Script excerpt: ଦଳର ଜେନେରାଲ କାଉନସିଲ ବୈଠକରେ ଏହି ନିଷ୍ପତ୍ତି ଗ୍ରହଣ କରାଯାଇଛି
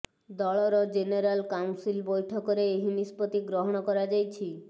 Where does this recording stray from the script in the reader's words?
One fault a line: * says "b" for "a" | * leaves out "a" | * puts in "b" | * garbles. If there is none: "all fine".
all fine